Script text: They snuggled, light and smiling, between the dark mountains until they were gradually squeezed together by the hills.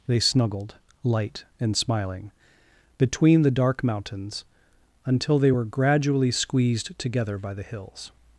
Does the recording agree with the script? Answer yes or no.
yes